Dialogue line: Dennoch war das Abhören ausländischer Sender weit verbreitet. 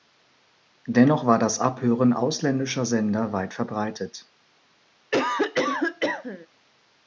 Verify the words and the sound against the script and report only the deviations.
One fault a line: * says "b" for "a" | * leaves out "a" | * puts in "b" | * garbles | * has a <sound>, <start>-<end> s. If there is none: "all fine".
* has a cough, 5.1-6.5 s